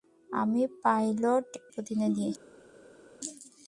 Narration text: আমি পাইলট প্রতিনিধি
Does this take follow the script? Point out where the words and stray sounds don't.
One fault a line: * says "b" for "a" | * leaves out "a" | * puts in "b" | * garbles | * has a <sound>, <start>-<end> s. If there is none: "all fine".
all fine